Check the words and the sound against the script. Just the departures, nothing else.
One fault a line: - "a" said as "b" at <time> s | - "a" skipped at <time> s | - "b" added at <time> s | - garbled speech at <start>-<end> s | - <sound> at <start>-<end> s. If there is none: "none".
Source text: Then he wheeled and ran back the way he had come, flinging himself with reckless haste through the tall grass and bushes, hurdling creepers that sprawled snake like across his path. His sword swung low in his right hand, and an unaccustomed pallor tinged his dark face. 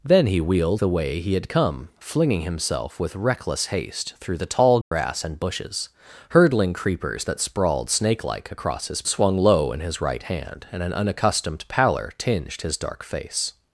- "and ran back" skipped at 0.8 s
- dropout at 4.8-4.9 s
- "path His sword" skipped at 9.0 s